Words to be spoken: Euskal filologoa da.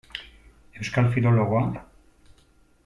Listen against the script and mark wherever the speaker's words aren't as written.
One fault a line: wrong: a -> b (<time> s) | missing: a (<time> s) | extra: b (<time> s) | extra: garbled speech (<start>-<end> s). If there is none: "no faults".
no faults